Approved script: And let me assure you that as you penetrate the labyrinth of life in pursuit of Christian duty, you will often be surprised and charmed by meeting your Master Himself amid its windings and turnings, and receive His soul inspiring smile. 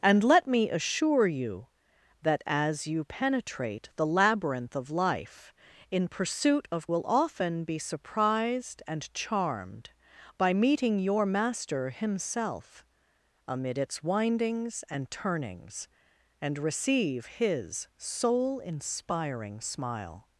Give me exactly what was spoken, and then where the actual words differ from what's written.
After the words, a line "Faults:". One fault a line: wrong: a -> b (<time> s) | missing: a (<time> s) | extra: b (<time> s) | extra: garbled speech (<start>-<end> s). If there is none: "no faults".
And let me assure you that as you penetrate the labyrinth of life in pursuit of Will often be surprised and charmed by meeting your Master Himself amid its windings and turnings, and receive His soul inspiring smile.
Faults:
missing: Christian duty you (6.9 s)